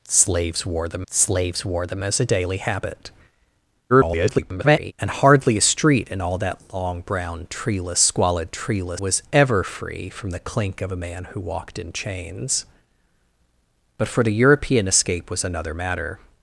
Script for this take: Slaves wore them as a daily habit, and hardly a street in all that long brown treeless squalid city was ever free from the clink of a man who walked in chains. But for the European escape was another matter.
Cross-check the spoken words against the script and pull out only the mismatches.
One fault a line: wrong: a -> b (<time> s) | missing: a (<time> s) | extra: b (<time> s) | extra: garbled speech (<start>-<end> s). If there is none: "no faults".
extra: slaves wore them (1.1 s)
extra: garbled speech (3.9-4.9 s)
wrong: city -> treeless (8.5 s)